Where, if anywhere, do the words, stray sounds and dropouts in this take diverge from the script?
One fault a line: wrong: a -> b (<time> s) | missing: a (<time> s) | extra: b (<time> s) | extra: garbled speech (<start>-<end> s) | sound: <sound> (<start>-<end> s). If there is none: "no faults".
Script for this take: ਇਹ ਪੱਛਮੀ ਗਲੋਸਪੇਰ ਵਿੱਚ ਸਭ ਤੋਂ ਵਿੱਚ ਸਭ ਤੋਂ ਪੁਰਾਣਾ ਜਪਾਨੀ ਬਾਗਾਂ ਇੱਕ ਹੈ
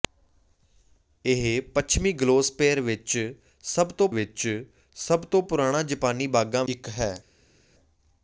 no faults